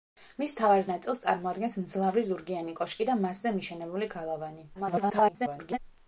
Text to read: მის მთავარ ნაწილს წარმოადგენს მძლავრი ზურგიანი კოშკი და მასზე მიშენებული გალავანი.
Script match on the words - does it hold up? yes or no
no